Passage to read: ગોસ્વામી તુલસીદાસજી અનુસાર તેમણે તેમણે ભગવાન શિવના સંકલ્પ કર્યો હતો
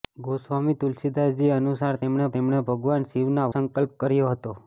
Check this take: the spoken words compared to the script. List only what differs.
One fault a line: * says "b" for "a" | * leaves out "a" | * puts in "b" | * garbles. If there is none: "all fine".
all fine